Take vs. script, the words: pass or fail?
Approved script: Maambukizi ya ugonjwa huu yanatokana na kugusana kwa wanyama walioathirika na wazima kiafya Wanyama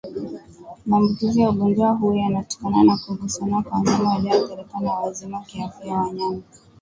pass